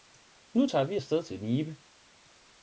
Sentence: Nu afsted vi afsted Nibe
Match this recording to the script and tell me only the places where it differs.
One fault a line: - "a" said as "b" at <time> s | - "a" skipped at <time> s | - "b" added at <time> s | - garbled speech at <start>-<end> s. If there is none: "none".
- "afsted" said as "tager" at 0.6 s
- "til" added at 1.2 s